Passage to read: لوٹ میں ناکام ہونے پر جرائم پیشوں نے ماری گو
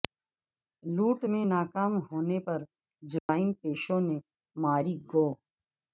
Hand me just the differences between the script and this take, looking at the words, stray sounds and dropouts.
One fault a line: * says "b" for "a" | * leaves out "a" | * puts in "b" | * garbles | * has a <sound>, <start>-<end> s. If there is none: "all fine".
* has a dropout, 3.2-3.3 s